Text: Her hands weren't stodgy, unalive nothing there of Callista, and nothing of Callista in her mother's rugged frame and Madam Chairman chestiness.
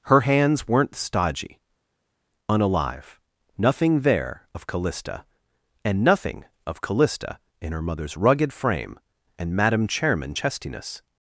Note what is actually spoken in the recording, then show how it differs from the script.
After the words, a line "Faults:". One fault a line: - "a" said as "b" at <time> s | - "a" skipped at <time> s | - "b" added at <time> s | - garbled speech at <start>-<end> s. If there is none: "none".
Her hands weren't stodgy, unalive nothing there of Callista, and nothing of Callista in her mother's rugged frame and Madam Chairman chestiness.
Faults:
none